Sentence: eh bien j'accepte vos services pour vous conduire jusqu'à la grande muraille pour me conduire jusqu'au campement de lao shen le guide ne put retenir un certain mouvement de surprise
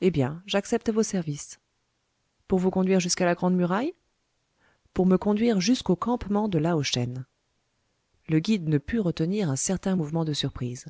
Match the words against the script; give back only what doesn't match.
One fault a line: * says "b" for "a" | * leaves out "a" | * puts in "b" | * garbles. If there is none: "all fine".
all fine